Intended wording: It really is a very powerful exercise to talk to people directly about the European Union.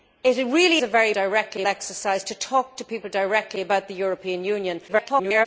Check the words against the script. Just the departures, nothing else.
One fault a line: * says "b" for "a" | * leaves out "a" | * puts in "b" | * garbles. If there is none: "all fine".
* leaves out "is"
* says "directly" for "powerful"
* garbles